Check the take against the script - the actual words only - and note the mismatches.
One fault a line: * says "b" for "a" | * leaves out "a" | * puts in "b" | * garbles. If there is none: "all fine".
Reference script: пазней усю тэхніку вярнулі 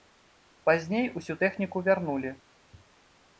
all fine